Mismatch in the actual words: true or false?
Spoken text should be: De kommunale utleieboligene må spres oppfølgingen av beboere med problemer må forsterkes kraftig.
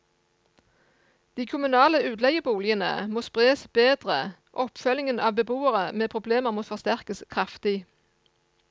true